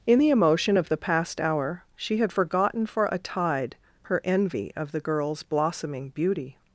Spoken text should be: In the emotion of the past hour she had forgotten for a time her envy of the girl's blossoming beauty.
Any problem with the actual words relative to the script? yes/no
yes